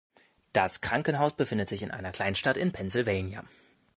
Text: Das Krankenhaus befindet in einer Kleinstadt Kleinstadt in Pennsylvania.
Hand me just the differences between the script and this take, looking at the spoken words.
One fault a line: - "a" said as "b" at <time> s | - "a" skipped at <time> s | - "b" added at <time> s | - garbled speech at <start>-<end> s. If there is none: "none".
- "sich" added at 1.7 s
- "Kleinstadt" skipped at 2.6 s